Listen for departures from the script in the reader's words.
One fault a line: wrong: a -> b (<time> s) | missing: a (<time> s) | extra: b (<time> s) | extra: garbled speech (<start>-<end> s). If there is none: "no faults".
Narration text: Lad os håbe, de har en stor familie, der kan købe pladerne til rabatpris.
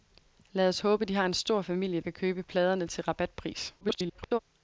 missing: der (2.0 s)
extra: garbled speech (3.8-4.4 s)